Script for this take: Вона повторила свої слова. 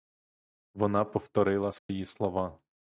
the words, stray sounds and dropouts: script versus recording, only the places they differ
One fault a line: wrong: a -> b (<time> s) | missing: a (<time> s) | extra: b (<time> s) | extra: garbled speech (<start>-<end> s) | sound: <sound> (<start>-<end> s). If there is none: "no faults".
sound: dropout (1.8-1.9 s)